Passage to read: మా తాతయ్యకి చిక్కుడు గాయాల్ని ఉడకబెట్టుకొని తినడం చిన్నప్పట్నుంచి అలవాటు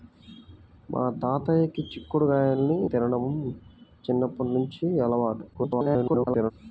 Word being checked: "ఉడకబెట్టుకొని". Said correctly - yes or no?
no